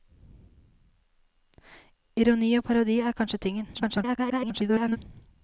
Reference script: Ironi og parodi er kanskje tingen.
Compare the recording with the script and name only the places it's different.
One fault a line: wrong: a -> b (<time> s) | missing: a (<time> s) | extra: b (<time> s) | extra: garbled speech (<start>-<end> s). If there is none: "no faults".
extra: garbled speech (3.7-5.0 s)